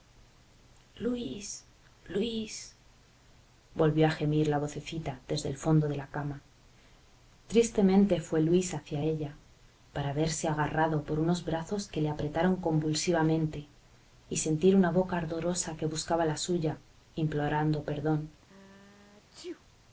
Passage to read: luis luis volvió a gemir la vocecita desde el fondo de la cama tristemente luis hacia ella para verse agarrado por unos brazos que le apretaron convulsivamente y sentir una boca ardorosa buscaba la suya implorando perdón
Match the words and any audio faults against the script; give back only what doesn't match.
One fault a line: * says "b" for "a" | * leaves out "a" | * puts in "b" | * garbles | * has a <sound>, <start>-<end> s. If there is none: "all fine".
* puts in "fue"
* puts in "que"
* has a sneeze, 18.4-19.6 s